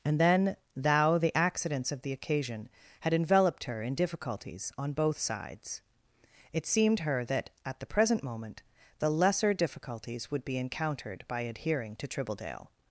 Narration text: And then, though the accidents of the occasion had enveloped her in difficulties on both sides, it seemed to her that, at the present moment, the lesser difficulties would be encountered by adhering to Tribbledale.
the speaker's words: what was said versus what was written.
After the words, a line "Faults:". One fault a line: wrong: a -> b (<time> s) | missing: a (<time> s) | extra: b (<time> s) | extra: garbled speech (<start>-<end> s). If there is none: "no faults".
And then, thou the accidents of the occasion had enveloped her in difficulties on both sides, it seemed her that, at the present moment, the lesser difficulties would be encountered by adhering to Tribbledale.
Faults:
wrong: though -> thou (0.8 s)
missing: to (7.0 s)